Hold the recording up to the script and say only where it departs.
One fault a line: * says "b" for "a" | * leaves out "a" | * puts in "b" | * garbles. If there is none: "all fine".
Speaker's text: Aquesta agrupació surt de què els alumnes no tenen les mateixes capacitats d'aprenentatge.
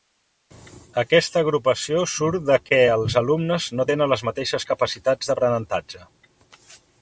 all fine